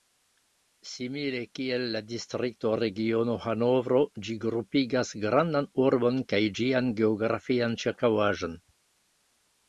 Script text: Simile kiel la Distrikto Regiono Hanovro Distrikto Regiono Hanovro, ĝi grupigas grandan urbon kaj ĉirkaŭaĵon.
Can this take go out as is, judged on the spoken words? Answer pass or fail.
fail